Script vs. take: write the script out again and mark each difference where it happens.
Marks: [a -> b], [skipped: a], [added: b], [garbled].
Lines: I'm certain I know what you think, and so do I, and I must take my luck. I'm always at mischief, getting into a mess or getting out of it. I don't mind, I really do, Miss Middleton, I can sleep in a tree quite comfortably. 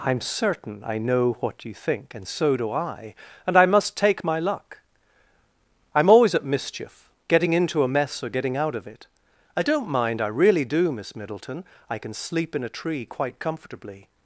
I'm certain I know what you think, and so do I, and I must take my luck. I'm always at mischief, getting into a mess or getting out of it. I don't mind, I really do, Miss Middleton, I can sleep in a tree quite comfortably.